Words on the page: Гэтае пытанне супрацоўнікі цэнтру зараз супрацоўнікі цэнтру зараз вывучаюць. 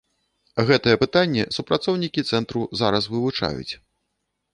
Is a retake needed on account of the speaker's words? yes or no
yes